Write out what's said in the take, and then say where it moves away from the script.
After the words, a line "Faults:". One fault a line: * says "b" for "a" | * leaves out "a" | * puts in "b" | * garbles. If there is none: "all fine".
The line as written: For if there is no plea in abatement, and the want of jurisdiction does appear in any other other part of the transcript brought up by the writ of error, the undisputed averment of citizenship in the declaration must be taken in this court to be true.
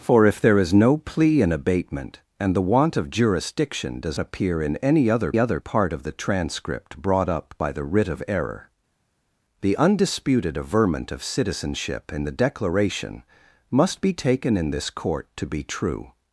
For if there is no plea in abatement, and the want of jurisdiction does appear in any other other part of the transcript brought up by the writ of error, the undisputed averment of citizenship in the declaration must be taken in this court to be true.
Faults:
all fine